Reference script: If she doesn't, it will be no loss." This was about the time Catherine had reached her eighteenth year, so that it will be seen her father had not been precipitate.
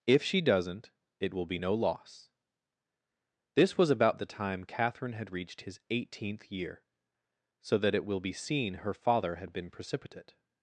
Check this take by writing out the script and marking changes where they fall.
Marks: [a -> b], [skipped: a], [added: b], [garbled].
If she doesn't, it will be no loss." This was about the time Catherine had reached [her -> his] eighteenth year, so that it will be seen her father had [skipped: not] been precipitate.